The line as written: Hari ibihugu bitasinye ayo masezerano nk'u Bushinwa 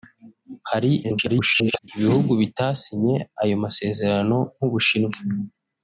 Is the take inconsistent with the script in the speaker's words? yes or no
yes